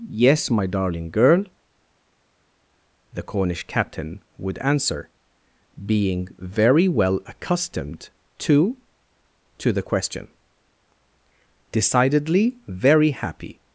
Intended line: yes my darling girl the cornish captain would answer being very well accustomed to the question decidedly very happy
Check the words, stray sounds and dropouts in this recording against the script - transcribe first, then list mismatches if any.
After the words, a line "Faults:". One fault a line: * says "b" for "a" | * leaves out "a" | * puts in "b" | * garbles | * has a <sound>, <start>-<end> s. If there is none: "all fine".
yes my darling girl the cornish captain would answer being very well accustomed to to the question decidedly very happy
Faults:
* puts in "to"